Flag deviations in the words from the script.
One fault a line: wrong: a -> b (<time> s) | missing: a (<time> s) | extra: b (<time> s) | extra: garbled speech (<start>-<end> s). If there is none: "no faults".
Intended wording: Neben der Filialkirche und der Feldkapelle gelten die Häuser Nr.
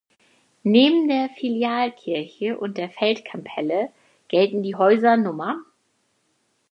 no faults